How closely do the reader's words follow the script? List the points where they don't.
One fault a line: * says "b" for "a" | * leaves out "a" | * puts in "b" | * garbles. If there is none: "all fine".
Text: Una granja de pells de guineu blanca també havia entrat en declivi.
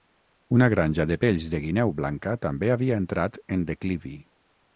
all fine